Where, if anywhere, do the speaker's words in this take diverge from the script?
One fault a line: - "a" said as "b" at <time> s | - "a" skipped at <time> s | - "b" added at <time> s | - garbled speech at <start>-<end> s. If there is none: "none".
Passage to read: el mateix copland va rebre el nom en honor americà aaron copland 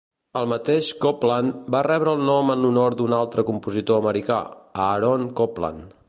- "d'un altre compositor" added at 3.0 s